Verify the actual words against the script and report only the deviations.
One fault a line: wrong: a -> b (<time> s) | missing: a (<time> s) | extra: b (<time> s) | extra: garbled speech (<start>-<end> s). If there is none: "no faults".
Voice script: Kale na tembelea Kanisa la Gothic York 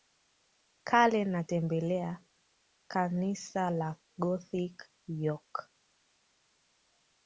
no faults